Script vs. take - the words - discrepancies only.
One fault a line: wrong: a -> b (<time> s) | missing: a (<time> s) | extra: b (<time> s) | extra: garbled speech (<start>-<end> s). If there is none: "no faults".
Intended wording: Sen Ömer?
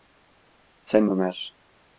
no faults